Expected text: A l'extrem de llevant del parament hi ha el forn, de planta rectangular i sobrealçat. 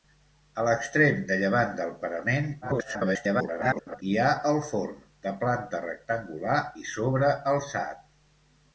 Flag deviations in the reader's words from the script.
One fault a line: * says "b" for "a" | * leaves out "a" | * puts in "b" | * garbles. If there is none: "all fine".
* garbles